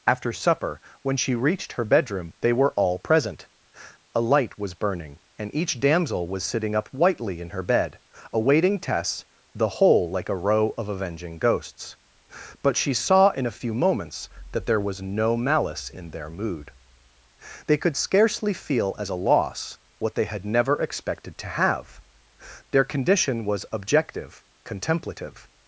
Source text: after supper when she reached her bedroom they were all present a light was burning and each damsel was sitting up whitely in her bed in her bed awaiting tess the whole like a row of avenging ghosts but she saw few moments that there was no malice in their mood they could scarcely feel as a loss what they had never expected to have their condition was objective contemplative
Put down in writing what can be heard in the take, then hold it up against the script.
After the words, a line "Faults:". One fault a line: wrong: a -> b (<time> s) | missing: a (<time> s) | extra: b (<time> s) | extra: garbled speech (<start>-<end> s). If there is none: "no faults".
after supper when she reached her bedroom they were all present a light was burning and each damsel was sitting up whitely in her bed awaiting tess the whole like a row of avenging ghosts but she saw in a few moments that there was no malice in their mood they could scarcely feel as a loss what they had never expected to have their condition was objective contemplative
Faults:
missing: in her bed (8.0 s)
extra: in a (13.3 s)